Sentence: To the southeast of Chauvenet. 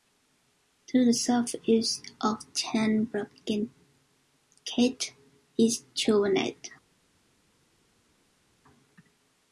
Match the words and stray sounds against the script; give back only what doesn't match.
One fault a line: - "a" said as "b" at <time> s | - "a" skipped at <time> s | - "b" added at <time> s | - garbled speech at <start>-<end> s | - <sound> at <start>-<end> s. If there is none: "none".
- "Ten Bruggencate is" added at 2.5 s